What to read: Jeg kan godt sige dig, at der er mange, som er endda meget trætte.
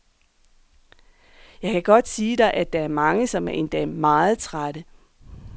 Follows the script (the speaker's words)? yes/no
yes